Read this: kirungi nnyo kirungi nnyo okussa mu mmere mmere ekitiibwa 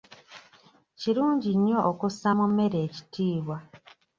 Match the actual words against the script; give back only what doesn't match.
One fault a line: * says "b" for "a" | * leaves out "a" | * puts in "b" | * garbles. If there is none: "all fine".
* leaves out "kirungi nnyo"
* leaves out "mmere"